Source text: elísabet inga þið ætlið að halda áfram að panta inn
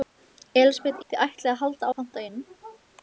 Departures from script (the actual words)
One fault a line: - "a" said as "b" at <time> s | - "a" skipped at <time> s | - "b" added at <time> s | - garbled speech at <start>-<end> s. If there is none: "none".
- "inga" skipped at 1.0 s
- "áfram" skipped at 1.9 s